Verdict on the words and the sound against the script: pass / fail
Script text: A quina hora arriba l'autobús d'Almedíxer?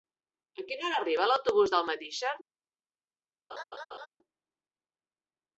fail